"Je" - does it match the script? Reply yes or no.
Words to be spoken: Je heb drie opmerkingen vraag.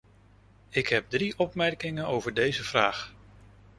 no